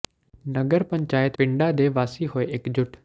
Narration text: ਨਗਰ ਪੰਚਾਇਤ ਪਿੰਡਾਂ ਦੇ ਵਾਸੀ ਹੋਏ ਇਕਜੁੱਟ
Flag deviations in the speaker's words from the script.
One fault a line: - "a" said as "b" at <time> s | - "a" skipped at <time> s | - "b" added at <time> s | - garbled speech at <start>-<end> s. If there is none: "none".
none